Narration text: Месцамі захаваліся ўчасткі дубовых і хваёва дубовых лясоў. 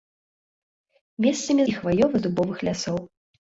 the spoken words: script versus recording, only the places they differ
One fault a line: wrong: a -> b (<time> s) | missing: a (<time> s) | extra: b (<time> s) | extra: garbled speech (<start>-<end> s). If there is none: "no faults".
missing: захаваліся ўчасткі дубовых (1.6 s)